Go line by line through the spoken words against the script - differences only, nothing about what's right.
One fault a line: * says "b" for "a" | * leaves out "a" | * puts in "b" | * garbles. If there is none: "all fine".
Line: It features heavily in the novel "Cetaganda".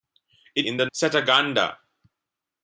* leaves out "features heavily"
* leaves out "novel"